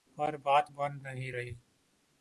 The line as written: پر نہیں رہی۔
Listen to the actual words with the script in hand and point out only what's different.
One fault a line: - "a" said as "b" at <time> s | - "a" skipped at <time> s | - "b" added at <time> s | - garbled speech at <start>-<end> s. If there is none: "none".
- "بات بن" added at 0.4 s